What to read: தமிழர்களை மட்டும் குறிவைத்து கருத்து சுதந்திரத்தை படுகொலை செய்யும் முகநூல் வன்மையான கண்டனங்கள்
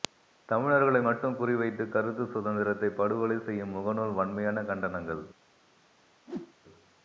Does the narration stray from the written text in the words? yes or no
no